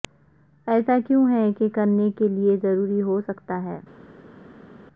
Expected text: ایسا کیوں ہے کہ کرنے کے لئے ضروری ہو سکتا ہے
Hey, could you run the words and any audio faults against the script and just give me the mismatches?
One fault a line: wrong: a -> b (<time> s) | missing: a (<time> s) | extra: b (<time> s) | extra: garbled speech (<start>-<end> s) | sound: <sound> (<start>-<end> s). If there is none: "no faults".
no faults